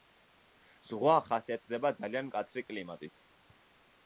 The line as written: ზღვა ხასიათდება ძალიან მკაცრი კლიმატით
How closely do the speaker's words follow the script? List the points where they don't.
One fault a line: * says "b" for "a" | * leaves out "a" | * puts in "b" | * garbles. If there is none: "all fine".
all fine